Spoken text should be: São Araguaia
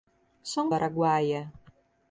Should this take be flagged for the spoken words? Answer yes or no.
no